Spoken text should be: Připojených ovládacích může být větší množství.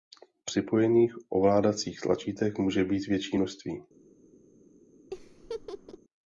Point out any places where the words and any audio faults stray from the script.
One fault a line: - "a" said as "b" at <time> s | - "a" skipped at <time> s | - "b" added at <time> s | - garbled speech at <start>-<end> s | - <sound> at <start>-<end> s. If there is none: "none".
- "tlačítek" added at 2.0 s
- laugh at 5.1-6.0 s